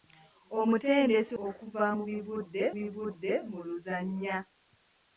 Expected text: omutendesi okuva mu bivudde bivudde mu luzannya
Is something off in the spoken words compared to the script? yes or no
no